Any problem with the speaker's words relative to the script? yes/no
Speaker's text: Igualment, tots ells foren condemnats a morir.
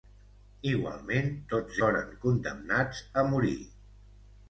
yes